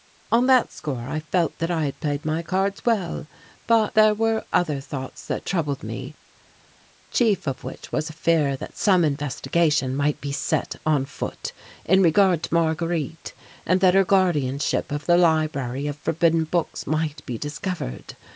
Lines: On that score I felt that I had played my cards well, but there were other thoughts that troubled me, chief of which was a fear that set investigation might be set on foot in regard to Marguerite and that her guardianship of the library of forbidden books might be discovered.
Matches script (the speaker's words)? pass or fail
fail